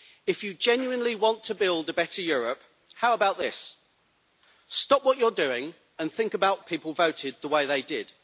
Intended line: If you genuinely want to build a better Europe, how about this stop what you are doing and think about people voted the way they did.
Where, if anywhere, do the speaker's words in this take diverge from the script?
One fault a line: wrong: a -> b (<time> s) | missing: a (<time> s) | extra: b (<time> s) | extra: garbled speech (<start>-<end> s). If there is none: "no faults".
no faults